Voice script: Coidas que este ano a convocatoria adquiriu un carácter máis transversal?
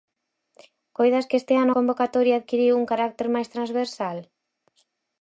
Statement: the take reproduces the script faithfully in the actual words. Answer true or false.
true